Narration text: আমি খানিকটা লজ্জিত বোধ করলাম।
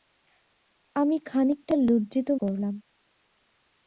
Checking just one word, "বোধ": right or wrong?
wrong